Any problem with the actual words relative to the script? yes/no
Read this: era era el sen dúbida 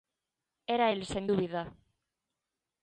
yes